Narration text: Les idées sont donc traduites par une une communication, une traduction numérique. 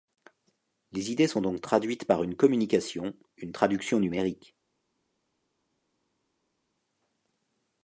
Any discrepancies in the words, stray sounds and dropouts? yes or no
yes